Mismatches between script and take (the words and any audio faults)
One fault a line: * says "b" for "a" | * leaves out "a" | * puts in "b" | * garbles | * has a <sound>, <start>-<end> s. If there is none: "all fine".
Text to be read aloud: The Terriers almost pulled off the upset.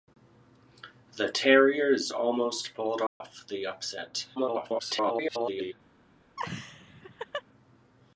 * has a dropout, 3.1-3.2 s
* garbles
* has a laugh, 6.4-7.4 s